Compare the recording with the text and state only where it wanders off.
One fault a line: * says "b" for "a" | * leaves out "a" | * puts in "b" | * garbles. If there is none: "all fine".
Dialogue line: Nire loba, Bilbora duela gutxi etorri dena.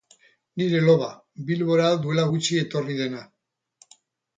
all fine